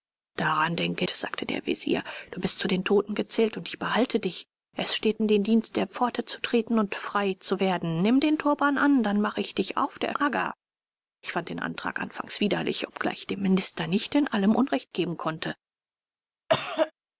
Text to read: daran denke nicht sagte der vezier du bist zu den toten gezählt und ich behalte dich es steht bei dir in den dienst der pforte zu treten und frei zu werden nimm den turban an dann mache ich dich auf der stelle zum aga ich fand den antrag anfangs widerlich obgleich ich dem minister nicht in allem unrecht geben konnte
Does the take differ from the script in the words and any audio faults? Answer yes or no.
yes